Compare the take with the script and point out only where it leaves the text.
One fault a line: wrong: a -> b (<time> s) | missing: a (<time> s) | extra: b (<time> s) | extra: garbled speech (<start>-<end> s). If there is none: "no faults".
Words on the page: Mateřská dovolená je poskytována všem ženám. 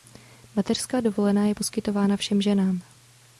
no faults